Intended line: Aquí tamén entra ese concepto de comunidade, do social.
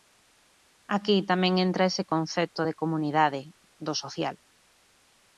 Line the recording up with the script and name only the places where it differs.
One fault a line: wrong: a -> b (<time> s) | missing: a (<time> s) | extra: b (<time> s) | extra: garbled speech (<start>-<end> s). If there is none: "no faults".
no faults